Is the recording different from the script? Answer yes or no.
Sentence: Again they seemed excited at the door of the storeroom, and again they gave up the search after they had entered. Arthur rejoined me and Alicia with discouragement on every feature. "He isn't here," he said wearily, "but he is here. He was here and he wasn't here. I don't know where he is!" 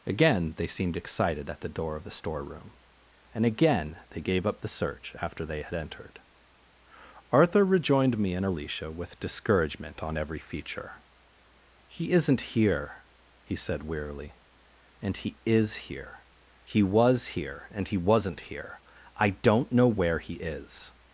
yes